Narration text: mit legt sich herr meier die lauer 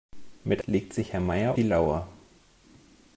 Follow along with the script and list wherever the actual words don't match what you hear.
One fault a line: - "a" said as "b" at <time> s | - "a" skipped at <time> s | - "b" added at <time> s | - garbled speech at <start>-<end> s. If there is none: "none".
none